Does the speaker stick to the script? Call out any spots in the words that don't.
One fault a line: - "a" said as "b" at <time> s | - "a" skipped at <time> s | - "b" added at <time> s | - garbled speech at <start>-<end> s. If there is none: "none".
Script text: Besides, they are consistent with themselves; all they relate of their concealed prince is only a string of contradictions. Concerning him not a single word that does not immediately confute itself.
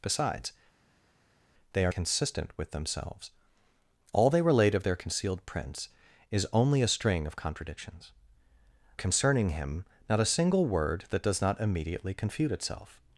none